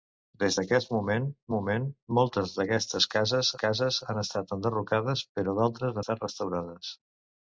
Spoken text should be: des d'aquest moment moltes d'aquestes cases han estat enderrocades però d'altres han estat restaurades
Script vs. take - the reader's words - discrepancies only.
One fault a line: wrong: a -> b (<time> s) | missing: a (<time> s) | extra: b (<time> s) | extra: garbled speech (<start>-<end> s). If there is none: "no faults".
extra: moment (1.6 s)
extra: cases (3.6 s)
missing: han (6.0 s)